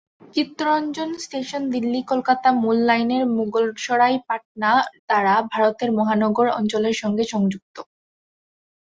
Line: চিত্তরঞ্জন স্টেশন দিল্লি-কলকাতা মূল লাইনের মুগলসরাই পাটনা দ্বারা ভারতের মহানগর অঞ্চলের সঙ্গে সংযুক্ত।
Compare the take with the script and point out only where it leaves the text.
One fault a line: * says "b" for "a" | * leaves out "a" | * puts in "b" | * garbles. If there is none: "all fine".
all fine